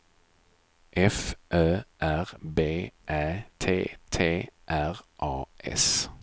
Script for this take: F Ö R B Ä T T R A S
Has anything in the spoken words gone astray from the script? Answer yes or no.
no